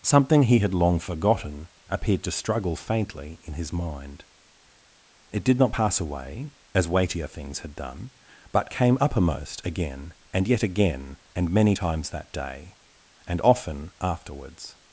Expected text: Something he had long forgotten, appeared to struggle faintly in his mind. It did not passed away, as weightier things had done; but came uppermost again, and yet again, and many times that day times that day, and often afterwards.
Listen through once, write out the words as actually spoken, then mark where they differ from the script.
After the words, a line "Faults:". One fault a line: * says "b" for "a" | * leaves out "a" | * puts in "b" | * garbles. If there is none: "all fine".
Something he had long forgotten, appeared to struggle faintly in his mind. It did not pass away, as weightier things had done; but came uppermost again, and yet again, and many times that day, and often afterwards.
Faults:
* says "pass" for "passed"
* leaves out "times that day"